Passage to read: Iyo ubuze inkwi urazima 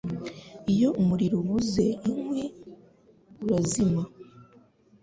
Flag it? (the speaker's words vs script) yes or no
yes